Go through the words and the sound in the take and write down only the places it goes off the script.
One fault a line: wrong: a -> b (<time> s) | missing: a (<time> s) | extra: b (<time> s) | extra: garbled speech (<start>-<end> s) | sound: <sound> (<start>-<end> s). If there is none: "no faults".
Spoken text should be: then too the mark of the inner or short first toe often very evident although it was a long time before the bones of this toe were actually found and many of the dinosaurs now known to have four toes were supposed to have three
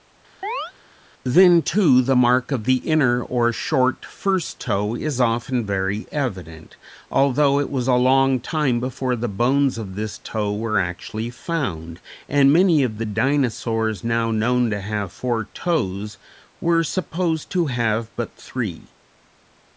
sound: chirp (0.4-0.7 s)
extra: is (4.9 s)
extra: but (18.2 s)